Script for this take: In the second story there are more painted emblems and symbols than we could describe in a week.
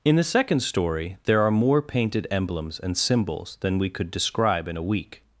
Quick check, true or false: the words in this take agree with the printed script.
true